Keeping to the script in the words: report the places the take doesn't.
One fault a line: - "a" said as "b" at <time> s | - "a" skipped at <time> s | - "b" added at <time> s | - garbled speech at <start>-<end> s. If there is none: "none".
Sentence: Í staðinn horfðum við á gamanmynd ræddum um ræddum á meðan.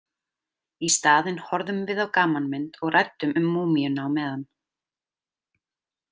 - "og" added at 2.8 s
- "ræddum" said as "múmíuna" at 3.6 s